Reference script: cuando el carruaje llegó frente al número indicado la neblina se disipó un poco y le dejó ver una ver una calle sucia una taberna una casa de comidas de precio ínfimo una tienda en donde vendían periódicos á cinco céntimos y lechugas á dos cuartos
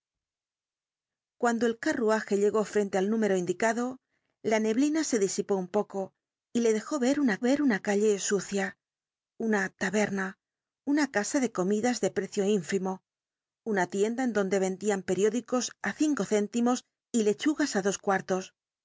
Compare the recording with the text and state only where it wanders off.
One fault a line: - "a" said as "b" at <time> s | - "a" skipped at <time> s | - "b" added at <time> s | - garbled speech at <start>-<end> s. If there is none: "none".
none